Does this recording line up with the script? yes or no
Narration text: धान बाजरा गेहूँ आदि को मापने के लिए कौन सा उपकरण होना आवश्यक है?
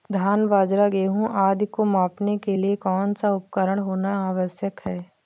yes